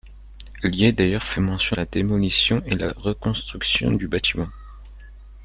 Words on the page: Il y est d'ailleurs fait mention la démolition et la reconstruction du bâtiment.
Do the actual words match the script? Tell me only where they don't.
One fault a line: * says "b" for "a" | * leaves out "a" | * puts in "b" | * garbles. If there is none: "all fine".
all fine